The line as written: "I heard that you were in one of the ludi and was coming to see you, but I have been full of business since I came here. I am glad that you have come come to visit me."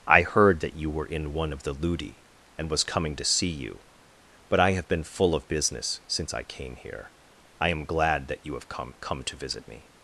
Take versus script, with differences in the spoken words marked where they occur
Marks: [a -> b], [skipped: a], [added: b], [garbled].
"I heard that you were in one of the ludi and was coming to see you, but I have been full of business since I came here. I am glad that you have come come to visit me."